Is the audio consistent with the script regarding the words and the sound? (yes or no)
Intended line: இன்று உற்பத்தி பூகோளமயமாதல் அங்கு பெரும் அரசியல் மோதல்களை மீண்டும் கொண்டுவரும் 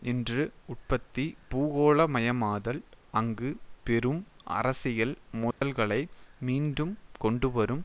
no